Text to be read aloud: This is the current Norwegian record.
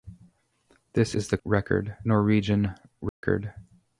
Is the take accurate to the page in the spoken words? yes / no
no